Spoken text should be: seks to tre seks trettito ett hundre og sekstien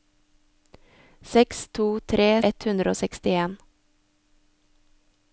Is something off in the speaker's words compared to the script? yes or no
yes